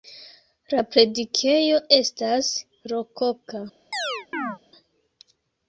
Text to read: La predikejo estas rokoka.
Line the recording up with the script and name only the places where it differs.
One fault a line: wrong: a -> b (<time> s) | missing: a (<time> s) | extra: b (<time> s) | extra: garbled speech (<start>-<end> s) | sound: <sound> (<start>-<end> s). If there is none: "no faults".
sound: chirp (3.9-4.6 s)